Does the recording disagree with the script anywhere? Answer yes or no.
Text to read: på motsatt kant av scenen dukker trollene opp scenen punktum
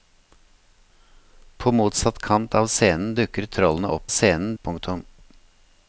no